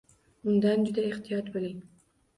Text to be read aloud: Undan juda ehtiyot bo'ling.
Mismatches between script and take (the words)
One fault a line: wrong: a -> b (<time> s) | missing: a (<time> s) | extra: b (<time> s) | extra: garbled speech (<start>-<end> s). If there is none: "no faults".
no faults